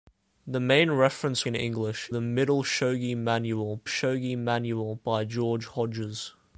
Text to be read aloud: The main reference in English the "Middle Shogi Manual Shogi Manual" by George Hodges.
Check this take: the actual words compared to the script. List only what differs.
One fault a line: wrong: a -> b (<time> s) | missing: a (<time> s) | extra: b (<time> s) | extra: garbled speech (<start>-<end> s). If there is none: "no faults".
no faults